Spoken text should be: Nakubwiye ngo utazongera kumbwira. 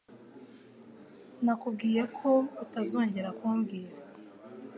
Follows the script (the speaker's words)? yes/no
no